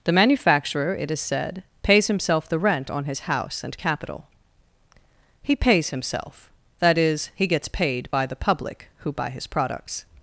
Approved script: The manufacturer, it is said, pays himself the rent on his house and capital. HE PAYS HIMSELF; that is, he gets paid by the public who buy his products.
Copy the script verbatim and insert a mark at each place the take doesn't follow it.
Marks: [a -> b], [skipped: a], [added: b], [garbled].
The manufacturer, it is said, pays himself the rent on his house and capital. HE PAYS HIMSELF; that is, he gets paid by the public who buy his products.